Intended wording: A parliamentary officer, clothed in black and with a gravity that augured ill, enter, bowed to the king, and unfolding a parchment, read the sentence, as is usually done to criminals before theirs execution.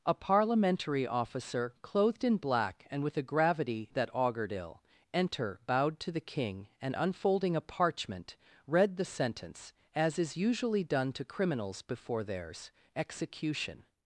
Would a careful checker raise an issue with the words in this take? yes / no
no